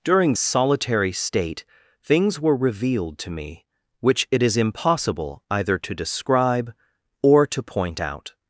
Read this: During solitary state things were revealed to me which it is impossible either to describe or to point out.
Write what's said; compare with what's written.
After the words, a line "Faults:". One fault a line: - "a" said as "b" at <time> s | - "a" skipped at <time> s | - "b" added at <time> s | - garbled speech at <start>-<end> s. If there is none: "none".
During solitary state things were revealed to me which it is impossible either to describe or to point out.
Faults:
none